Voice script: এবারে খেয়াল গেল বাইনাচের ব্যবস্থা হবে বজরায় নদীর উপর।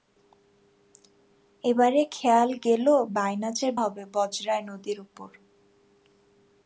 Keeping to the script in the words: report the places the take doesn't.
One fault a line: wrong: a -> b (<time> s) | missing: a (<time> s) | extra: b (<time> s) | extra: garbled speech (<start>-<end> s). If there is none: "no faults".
missing: ব্যবস্থা (3.7 s)